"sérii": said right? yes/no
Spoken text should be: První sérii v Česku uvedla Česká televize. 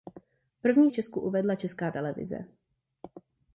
no